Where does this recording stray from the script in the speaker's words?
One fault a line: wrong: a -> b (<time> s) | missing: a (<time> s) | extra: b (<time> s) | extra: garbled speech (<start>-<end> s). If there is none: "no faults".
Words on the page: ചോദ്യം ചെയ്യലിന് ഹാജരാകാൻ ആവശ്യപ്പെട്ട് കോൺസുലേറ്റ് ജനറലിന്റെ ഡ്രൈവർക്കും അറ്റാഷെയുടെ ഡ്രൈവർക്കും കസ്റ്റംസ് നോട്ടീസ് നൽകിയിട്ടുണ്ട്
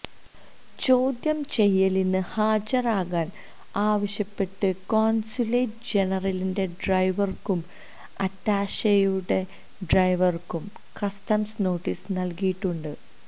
no faults